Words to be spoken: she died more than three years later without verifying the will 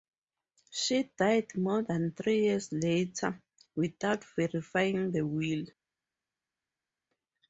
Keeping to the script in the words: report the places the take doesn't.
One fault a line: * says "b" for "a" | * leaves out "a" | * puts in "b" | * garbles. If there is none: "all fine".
all fine